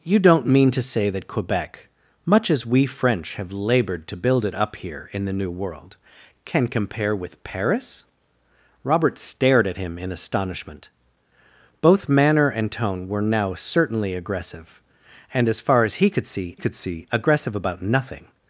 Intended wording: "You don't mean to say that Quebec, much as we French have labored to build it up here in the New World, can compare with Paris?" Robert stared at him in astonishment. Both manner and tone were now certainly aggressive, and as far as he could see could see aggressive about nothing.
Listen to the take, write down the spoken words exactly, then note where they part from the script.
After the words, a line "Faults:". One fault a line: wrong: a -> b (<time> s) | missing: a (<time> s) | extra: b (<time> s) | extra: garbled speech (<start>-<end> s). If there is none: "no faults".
"You don't mean to say that Quebec, much as we French have labored to build it up here in the New World, can compare with Paris?" Robert stared at him in astonishment. Both manner and tone were now certainly aggressive, and as far as he could see could see aggressive about nothing.
Faults:
no faults